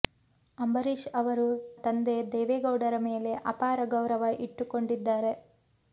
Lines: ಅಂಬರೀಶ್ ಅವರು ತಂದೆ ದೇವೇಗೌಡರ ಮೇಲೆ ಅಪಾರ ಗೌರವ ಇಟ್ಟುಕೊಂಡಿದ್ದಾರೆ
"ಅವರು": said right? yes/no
yes